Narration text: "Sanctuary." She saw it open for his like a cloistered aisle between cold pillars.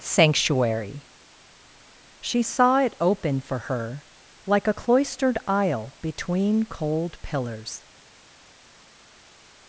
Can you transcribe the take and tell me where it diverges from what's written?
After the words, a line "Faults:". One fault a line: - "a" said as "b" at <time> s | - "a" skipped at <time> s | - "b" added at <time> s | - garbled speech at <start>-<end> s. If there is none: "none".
"Sanctuary." She saw it open for her like a cloistered aisle between cold pillars.
Faults:
- "his" said as "her" at 3.6 s